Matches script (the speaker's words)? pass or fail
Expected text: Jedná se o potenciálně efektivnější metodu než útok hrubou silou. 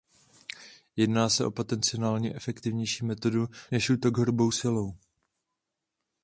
pass